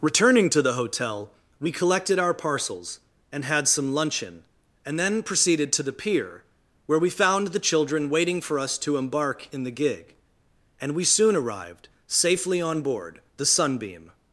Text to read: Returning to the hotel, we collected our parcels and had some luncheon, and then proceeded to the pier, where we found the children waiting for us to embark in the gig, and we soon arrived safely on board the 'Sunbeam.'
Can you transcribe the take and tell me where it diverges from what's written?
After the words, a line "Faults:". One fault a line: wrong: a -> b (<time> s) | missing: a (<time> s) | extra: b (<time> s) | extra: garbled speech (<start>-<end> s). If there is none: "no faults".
Returning to the hotel, we collected our parcels and had some luncheon, and then proceeded to the pier, where we found the children waiting for us to embark in the gig, and we soon arrived safely on board the 'Sunbeam.'
Faults:
no faults